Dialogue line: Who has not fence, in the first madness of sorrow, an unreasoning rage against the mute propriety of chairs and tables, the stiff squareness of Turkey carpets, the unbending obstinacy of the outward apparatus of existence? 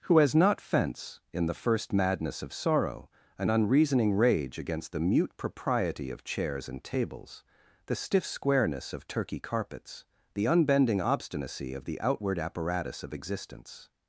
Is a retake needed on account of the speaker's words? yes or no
no